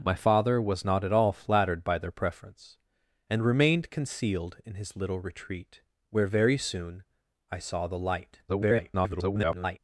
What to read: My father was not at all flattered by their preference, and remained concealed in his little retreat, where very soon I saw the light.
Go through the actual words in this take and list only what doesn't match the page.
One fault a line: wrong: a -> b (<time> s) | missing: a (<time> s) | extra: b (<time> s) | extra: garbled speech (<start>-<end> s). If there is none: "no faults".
extra: garbled speech (8.5-9.8 s)